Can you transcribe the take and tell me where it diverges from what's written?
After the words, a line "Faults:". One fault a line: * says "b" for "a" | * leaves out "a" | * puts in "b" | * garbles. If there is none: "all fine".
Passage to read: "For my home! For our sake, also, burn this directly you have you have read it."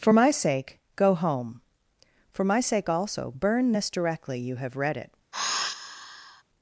"For my sake, go home! For my sake, also, burn this directly you have read it."
Faults:
* puts in "sake go"
* says "my" for "our"
* leaves out "you have"